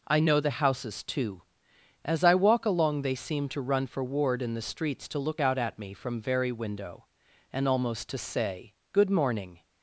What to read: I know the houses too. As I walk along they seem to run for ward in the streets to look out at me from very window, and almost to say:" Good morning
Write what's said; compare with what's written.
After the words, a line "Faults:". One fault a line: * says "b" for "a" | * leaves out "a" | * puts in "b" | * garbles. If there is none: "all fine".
I know the houses too. As I walk along they seem to run for ward in the streets to look out at me from very window, and almost to say:" Good morning
Faults:
all fine